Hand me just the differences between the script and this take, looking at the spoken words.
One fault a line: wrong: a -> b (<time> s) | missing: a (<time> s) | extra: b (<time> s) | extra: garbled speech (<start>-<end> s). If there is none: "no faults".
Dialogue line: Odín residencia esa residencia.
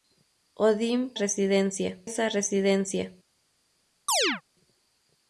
no faults